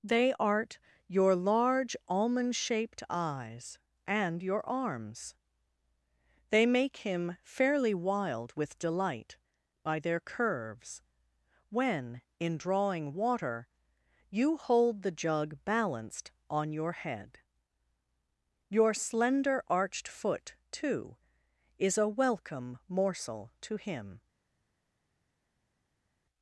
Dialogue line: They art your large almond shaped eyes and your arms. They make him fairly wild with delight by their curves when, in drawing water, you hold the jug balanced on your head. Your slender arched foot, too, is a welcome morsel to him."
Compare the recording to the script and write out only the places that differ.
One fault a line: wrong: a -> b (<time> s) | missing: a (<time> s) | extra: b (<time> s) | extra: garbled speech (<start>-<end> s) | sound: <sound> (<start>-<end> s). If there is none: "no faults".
no faults